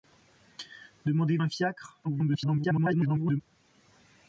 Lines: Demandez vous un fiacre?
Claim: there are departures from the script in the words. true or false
true